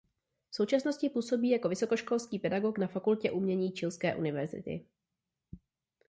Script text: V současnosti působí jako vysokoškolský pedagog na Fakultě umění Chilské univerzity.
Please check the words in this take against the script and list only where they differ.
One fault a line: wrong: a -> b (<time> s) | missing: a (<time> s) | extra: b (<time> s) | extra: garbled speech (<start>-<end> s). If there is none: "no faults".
no faults